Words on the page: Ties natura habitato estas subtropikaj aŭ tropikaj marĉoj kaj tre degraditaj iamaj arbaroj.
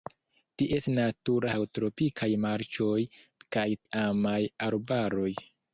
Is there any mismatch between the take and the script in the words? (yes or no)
yes